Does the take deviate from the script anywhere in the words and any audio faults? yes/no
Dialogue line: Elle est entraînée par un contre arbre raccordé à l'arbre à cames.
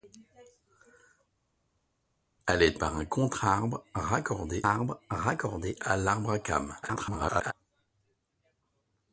yes